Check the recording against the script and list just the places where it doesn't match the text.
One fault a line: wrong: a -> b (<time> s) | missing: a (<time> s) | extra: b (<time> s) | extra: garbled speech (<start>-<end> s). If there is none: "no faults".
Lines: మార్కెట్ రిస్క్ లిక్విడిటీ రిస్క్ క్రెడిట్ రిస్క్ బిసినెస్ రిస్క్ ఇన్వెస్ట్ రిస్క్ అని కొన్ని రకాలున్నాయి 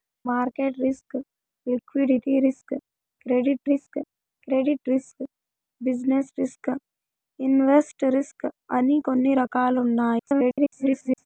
extra: క్రెడిట్ రిస్క్ (4.5 s)
extra: garbled speech (10.2-11.3 s)